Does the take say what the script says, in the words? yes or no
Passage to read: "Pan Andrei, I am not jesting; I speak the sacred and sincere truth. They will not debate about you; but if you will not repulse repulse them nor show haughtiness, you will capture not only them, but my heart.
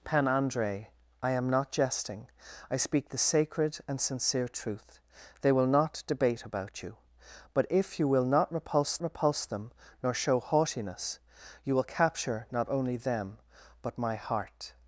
yes